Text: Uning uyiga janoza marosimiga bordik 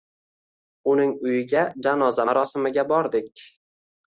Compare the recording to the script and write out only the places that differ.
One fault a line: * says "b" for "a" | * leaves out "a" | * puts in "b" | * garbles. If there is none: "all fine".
all fine